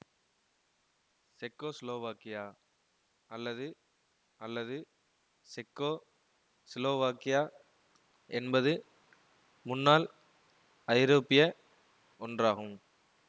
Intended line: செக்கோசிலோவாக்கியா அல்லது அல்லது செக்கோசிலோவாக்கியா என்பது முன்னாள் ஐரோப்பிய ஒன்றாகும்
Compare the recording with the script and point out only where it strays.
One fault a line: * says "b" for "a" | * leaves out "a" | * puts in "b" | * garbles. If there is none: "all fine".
all fine